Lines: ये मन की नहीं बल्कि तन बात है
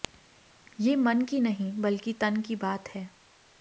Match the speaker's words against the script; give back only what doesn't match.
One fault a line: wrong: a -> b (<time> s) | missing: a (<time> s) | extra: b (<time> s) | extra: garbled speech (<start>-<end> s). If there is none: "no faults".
extra: की (2.4 s)